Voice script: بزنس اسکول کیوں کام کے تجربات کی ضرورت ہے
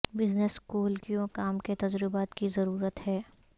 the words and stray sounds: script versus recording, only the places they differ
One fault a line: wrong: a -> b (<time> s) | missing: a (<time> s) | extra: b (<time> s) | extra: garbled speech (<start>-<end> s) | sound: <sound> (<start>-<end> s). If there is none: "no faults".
no faults